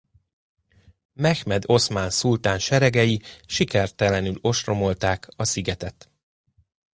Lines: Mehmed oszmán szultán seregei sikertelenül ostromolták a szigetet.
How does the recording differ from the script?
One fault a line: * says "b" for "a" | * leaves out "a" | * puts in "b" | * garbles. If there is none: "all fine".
all fine